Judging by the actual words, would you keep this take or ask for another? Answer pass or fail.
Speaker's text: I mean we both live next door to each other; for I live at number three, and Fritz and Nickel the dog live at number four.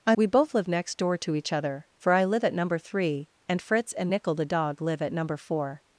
fail